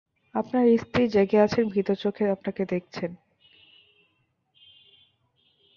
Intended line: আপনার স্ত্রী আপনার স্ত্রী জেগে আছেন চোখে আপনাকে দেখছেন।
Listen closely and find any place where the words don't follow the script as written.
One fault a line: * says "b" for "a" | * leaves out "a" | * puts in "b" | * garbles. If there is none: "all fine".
* leaves out "আপনার স্ত্রী"
* puts in "ভীত"